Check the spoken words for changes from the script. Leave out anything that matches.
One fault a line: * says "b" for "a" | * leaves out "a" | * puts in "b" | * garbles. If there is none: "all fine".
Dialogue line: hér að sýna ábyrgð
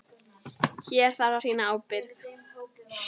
* puts in "þarf"